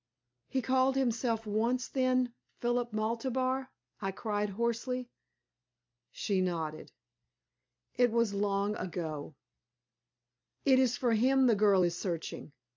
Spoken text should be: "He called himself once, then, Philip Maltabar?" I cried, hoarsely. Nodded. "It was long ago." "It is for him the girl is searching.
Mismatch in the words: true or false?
true